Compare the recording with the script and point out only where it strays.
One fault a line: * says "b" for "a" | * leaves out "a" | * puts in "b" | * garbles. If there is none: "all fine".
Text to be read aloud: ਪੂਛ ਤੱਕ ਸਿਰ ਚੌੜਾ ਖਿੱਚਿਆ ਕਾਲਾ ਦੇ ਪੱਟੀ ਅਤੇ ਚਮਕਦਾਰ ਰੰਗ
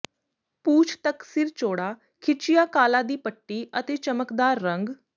* says "ਦੀ" for "ਦੇ"